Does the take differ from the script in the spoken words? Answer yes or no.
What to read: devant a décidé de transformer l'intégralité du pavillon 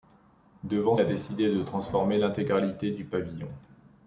no